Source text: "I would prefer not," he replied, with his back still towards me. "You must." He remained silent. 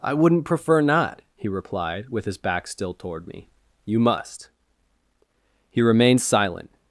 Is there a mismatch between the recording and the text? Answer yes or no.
yes